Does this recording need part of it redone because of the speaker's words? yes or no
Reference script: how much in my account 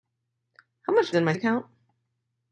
no